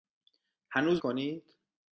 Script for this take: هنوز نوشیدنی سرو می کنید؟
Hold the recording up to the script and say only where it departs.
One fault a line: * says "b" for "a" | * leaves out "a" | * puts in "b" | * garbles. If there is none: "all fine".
* leaves out "نوشیدنی سرو می"